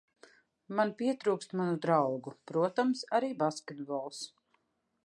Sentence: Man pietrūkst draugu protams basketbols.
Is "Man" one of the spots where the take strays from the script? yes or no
no